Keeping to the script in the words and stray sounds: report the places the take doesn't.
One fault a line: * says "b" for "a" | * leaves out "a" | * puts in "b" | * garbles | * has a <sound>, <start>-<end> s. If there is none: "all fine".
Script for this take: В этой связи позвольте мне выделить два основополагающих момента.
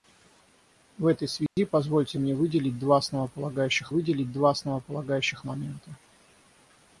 * has a dropout, 1.5-1.6 s
* puts in "выделить два основополагающих"